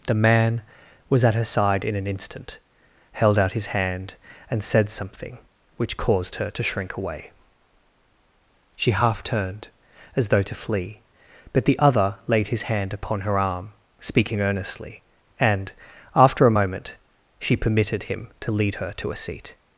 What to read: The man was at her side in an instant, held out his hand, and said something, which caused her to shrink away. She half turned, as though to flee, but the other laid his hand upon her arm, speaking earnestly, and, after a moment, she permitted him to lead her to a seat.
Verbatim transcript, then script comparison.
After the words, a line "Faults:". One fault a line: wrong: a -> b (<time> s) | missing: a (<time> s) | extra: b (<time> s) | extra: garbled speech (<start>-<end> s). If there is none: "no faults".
The man was at her side in an instant, held out his hand, and said something, which caused her to shrink away. She half turned, as though to flee, but the other laid his hand upon her arm, speaking earnestly, and, after a moment, she permitted him to lead her to a seat.
Faults:
no faults